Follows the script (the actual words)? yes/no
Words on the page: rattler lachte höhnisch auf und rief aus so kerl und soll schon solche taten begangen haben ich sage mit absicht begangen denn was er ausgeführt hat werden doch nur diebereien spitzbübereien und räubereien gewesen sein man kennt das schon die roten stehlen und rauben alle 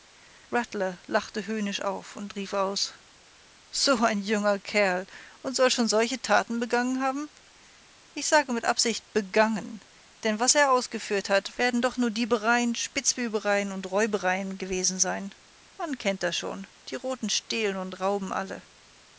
no